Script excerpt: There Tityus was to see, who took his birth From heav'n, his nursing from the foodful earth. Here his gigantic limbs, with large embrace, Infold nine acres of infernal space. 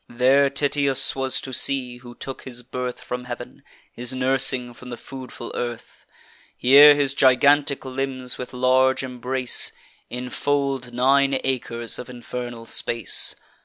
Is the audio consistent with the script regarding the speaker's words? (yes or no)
yes